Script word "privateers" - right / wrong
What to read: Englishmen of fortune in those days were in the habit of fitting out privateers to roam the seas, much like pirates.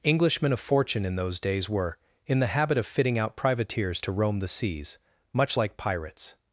right